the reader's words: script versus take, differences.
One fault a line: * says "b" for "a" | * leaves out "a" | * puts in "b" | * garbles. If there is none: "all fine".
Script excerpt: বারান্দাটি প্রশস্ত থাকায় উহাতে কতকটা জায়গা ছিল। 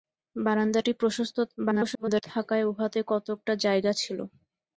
* garbles